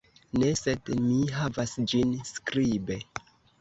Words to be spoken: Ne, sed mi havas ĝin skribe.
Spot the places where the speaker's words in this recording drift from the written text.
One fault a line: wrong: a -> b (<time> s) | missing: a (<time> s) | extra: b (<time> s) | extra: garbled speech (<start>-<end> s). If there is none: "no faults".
no faults